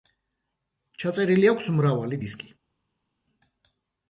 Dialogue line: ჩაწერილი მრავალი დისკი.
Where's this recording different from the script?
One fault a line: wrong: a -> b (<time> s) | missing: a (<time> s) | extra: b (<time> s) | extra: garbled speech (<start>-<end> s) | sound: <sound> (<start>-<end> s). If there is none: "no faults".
extra: აქვს (1.5 s)